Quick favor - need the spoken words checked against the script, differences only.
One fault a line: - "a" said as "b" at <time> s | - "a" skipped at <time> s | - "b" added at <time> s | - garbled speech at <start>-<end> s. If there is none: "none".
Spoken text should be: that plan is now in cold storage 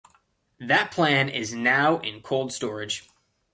none